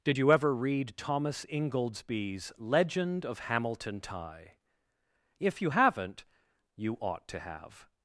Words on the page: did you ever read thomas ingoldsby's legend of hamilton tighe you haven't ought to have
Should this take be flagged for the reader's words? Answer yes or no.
yes